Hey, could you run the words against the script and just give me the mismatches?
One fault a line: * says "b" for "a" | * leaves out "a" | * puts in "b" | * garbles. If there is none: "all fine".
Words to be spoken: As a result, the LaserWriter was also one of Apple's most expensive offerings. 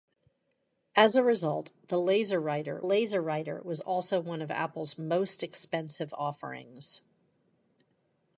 * puts in "LaserWriter"